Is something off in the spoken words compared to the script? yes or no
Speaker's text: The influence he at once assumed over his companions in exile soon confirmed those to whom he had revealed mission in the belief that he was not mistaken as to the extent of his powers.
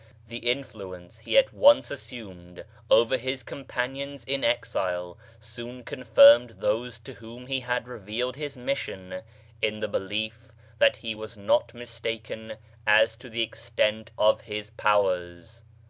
yes